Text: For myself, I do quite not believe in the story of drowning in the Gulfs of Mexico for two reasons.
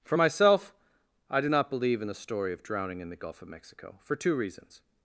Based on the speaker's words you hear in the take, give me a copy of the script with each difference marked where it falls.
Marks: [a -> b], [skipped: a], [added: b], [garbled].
For myself, I do [skipped: quite] not believe in the story of drowning in the [Gulfs -> Gulf] of Mexico for two reasons.